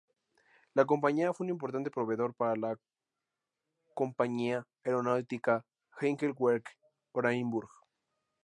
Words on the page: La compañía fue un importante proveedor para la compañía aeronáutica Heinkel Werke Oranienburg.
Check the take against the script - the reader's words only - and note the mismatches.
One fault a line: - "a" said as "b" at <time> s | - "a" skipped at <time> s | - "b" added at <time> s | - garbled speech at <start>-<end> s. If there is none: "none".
none